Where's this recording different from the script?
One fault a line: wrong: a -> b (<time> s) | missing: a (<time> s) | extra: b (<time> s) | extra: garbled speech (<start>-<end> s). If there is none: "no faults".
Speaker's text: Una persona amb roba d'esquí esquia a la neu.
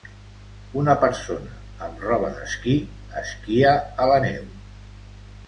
no faults